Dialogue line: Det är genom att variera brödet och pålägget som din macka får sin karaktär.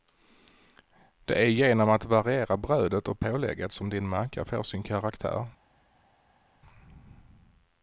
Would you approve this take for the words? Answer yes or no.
yes